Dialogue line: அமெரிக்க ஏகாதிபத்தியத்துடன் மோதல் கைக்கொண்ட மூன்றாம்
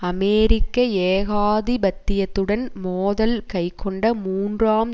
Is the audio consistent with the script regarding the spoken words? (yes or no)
yes